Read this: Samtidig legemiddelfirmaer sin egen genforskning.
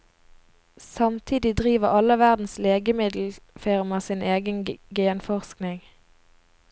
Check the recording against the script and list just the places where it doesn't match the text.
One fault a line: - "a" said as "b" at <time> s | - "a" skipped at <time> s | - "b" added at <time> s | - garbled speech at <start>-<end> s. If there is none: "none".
- "driver alle verdens" added at 1.6 s